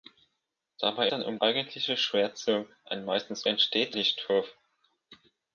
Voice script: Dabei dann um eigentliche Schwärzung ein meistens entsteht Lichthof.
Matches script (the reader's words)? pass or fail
pass